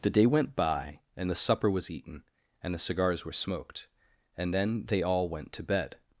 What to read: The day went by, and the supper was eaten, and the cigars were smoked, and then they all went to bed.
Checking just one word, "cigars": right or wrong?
right